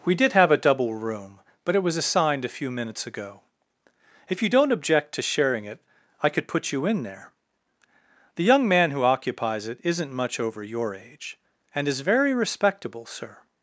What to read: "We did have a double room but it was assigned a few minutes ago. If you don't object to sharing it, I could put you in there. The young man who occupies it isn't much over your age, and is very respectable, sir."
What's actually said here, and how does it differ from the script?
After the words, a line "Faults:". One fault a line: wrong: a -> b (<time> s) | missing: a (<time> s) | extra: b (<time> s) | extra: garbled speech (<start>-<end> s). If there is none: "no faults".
"We did have a double room but it was assigned a few minutes ago. If you don't object to sharing it, I could put you in there. The young man who occupies it isn't much over your age, and is very respectable, sir."
Faults:
no faults